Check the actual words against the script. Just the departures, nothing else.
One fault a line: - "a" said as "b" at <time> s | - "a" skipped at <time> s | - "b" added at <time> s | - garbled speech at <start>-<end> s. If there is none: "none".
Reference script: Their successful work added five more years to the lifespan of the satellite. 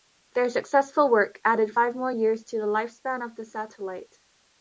none